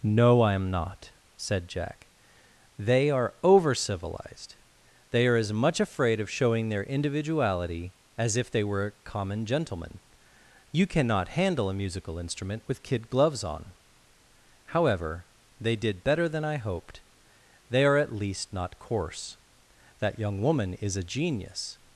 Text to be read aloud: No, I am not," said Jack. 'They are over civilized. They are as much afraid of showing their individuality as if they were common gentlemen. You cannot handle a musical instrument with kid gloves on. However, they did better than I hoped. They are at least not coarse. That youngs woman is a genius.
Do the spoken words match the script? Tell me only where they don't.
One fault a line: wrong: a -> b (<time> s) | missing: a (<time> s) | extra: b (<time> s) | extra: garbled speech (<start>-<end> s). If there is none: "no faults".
wrong: youngs -> young (20.2 s)